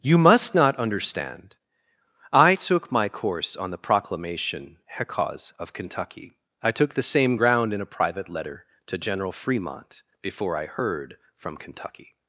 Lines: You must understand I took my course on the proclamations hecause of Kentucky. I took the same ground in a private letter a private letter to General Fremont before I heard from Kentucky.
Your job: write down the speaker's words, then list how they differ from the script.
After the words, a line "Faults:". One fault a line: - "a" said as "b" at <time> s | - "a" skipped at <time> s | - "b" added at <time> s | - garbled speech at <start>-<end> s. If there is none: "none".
You must not understand I took my course on the proclamation hecause of Kentucky. I took the same ground in a private letter to General Fremont before I heard from Kentucky.
Faults:
- "not" added at 0.6 s
- "proclamations" said as "proclamation" at 3.8 s
- "a private letter" skipped at 8.6 s